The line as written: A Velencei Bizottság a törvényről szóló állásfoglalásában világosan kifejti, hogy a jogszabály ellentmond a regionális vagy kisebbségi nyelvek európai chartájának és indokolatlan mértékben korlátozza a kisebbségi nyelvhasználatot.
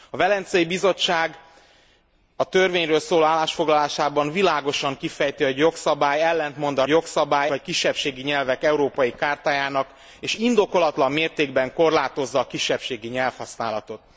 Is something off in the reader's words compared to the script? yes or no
yes